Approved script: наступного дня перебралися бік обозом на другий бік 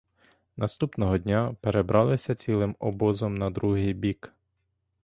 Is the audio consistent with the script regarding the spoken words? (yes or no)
no